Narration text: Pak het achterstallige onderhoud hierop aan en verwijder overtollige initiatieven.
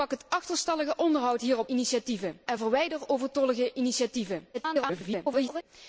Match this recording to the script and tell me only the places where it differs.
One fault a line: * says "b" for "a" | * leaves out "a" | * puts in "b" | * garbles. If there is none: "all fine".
* says "initiatieven" for "aan"
* garbles